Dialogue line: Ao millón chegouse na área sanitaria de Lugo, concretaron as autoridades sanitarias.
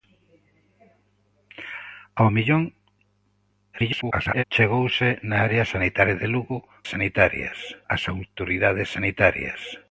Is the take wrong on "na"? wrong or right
right